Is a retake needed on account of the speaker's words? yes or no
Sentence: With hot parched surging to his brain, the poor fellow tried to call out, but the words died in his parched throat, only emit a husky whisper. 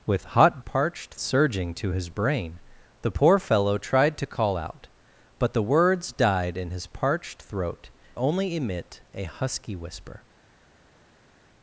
no